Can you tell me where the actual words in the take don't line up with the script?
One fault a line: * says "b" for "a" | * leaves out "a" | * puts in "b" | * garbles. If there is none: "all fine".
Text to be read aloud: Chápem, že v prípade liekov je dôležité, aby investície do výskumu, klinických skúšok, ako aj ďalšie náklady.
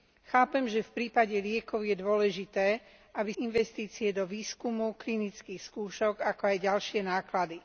all fine